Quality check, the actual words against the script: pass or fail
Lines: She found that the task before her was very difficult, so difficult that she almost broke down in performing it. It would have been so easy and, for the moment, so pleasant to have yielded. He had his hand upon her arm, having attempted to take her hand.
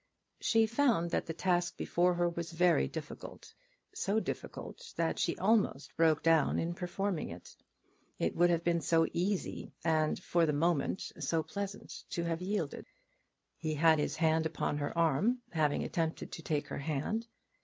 pass